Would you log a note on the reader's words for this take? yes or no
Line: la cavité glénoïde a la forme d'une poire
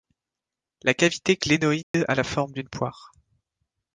no